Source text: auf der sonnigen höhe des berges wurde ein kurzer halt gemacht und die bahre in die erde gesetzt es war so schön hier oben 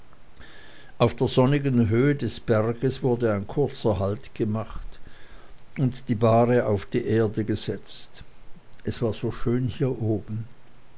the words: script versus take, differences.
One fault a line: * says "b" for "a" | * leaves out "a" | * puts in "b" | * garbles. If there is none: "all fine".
* says "auf" for "in"